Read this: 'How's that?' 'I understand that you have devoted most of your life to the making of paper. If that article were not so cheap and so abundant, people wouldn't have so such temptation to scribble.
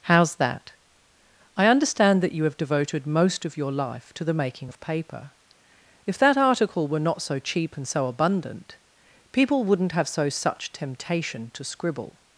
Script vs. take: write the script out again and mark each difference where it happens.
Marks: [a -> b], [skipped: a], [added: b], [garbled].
'How's that?' 'I understand that you have devoted most of your life to the making of paper. If that article were not so cheap and so abundant, people wouldn't have so such temptation to scribble.